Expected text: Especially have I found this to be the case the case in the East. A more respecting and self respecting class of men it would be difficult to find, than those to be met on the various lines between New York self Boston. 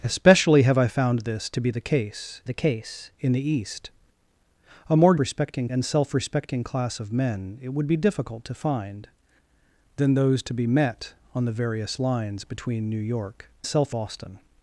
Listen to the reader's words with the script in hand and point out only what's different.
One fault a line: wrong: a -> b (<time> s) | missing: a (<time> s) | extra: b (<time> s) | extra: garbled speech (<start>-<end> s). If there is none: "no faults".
no faults